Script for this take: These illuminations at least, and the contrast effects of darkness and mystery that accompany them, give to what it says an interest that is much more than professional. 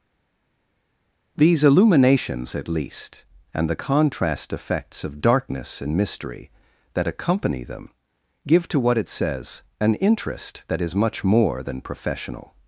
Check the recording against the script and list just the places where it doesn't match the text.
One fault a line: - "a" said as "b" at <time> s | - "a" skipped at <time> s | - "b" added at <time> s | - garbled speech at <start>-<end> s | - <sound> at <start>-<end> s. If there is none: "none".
none